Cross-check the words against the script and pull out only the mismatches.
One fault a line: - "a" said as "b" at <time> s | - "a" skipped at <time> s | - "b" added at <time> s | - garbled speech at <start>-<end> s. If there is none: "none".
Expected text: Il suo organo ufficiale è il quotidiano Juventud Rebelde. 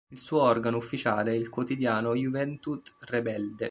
none